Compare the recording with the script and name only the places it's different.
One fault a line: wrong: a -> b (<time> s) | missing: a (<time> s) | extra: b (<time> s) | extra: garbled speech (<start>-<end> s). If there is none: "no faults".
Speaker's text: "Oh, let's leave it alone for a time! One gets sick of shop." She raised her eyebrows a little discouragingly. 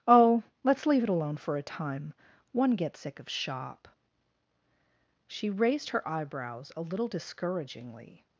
no faults